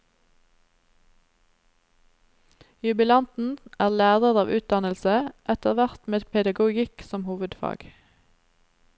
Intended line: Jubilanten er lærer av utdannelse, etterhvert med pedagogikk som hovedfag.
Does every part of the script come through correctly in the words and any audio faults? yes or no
yes